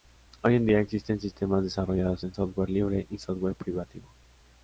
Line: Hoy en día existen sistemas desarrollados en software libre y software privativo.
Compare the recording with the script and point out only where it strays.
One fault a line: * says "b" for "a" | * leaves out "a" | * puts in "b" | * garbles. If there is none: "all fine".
all fine